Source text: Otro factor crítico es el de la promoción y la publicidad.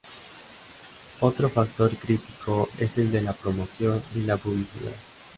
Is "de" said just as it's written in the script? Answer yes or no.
yes